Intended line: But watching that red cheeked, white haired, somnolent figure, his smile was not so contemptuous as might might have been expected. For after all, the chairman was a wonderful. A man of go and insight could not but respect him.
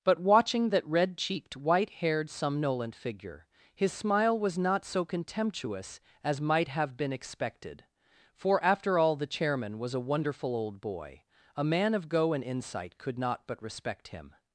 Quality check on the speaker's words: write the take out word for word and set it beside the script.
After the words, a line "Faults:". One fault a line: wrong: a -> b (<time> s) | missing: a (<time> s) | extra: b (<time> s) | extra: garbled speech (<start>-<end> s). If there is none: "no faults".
But watching that red cheeked, white haired, somnolent figure, his smile was not so contemptuous as might have been expected. For after all, the chairman was a wonderful old boy. A man of go and insight could not but respect him.
Faults:
missing: might (6.7 s)
extra: old boy (10.6 s)